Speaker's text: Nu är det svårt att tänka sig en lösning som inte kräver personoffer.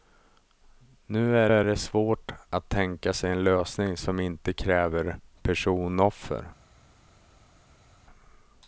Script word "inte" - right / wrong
right